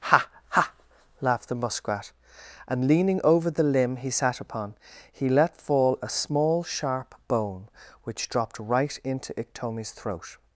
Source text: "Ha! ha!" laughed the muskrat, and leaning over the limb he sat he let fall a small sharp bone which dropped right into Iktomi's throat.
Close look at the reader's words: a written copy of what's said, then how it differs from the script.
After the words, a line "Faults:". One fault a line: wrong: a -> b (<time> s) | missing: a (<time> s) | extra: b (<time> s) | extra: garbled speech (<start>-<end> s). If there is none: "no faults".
"Ha! ha!" laughed the muskrat, and leaning over the limb he sat upon, he let fall a small sharp bone which dropped right into Iktomi's throat.
Faults:
extra: upon (4.4 s)